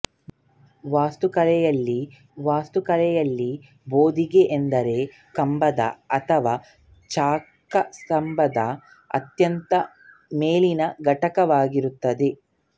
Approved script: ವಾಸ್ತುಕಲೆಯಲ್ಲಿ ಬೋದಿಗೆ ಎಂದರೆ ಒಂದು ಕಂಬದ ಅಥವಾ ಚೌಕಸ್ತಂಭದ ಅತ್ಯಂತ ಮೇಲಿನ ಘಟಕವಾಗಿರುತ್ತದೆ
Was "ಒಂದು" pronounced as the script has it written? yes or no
no